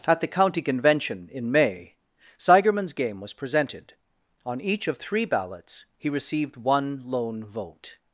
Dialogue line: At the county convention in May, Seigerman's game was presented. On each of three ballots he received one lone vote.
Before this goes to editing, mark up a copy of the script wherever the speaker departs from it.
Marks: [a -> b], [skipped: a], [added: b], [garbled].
At the county convention in May, Seigerman's game was presented. On each of three ballots he received one lone vote.